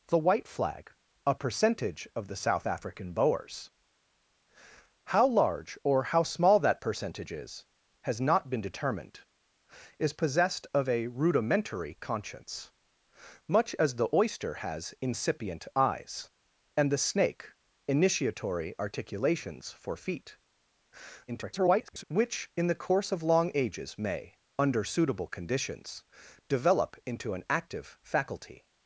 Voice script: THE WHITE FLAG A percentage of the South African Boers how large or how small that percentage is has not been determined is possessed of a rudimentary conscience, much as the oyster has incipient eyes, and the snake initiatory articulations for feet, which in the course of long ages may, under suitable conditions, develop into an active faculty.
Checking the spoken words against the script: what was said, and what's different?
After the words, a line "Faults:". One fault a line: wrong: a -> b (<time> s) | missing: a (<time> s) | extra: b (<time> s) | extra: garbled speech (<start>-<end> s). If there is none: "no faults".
THE WHITE FLAG A percentage of the South African Boers how large or how small that percentage is has not been determined is possessed of a rudimentary conscience, much as the oyster has incipient eyes, and the snake initiatory articulations for feet, [garbled] which in the course of long ages may, under suitable conditions, develop into an active faculty.
Faults:
extra: garbled speech (21.3-22.0 s)